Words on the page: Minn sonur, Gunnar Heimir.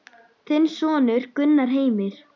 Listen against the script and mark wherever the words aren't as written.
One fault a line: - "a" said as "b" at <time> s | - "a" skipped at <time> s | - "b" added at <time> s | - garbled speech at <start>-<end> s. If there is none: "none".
- "Minn" said as "Þinn" at 0.5 s